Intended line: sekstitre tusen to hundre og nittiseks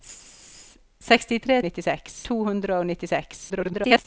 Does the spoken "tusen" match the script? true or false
false